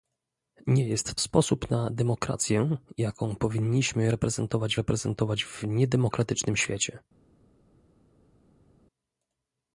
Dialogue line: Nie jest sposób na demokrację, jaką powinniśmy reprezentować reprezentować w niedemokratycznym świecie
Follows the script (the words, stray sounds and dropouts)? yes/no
yes